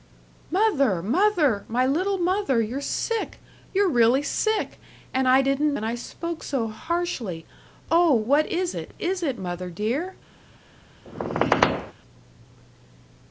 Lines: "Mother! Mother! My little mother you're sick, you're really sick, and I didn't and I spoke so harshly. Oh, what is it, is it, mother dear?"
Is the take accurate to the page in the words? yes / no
yes